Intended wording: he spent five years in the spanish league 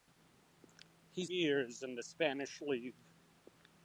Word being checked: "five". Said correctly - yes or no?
no